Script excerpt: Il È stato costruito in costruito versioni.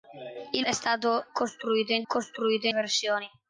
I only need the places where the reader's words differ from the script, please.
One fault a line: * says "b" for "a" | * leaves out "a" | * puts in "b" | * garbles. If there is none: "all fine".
all fine